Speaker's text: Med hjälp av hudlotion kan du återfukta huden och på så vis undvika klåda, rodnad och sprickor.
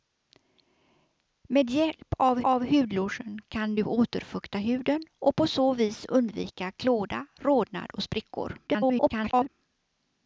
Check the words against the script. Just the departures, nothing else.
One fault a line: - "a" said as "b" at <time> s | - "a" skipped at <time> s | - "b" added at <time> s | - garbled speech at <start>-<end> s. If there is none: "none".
- "av" added at 2.4 s
- garbled speech at 8.7-9.5 s